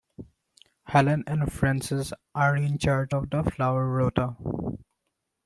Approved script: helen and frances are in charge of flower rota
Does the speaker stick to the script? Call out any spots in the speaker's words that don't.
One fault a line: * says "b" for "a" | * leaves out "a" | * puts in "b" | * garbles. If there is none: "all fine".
* puts in "the"